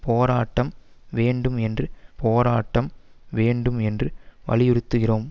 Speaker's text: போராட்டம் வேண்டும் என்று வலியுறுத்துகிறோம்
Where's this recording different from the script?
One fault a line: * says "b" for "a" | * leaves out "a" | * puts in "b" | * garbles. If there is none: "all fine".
* puts in "போராட்டம் வேண்டும் என்று"